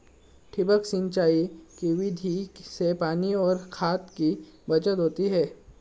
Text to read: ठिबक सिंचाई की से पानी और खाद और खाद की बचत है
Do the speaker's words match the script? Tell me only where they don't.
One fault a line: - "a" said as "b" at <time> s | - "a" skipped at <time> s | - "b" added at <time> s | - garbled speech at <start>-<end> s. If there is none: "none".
- "विधि" added at 1.9 s
- "और खाद" skipped at 4.1 s
- "होती" added at 5.0 s